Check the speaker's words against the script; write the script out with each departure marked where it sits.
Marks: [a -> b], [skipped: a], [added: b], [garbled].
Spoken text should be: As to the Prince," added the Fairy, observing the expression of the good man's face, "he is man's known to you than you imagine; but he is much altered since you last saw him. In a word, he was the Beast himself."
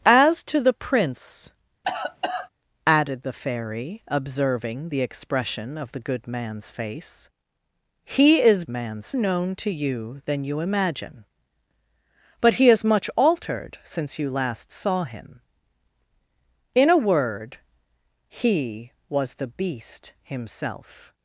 As to the Prince," added the Fairy, observing the expression of the good man's face, "he is man's known to you than you imagine; but he is much altered since you last saw him. In a word, he was the Beast himself."